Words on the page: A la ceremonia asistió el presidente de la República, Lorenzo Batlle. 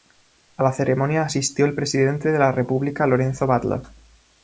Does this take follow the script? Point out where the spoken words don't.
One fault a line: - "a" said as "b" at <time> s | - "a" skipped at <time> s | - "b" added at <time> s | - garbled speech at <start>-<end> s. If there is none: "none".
none